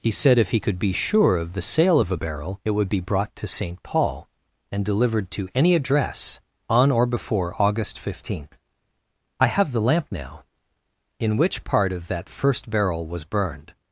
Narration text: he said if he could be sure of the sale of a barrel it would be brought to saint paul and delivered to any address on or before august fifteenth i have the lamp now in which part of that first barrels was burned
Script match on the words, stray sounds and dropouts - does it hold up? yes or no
no